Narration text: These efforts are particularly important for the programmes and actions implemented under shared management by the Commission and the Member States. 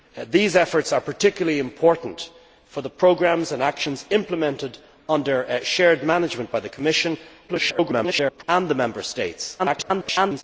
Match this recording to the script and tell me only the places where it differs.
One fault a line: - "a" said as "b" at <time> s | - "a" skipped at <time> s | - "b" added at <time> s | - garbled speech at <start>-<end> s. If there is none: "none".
- garbled speech at 7.5-8.4 s
- garbled speech at 9.6-10.4 s